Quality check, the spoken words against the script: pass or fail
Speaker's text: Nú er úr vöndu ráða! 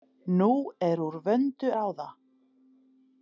pass